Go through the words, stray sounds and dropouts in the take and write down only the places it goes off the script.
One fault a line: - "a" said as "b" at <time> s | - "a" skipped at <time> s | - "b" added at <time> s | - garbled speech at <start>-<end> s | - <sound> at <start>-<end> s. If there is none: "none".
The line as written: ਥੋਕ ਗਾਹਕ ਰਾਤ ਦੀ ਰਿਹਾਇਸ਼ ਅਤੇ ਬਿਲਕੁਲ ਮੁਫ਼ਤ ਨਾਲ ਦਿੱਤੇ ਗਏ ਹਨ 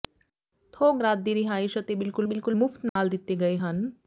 - "ਗਾਹਕ" skipped at 1.0 s
- "ਬਿਲਕੁਲ" added at 2.3 s
- dropout at 2.9-3.0 s